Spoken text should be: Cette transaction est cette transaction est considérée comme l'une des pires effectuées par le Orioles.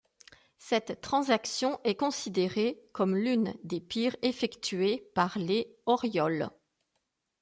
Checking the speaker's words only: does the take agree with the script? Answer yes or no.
no